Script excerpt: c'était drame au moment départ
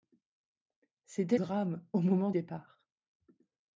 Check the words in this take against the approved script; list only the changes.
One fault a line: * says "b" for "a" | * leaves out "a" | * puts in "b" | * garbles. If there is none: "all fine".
all fine